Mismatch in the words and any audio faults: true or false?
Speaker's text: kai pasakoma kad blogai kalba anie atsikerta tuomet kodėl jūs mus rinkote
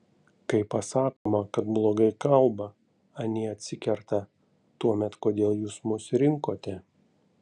true